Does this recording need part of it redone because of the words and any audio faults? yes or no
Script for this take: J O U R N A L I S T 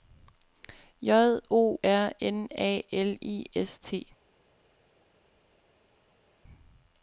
yes